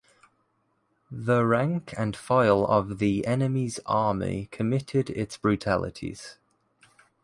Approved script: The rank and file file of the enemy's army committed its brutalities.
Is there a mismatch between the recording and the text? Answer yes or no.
yes